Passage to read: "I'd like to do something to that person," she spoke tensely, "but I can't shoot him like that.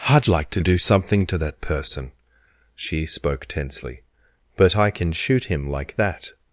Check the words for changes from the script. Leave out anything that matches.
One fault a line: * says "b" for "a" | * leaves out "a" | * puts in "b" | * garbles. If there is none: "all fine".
* says "can" for "can't"